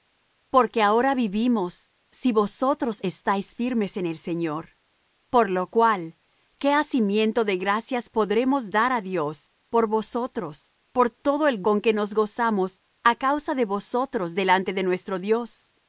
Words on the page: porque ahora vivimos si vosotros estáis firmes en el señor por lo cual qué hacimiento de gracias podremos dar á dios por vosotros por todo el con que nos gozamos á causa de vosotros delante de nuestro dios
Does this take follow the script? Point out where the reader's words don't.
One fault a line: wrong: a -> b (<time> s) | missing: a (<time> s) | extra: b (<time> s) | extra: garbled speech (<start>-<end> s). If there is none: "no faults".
no faults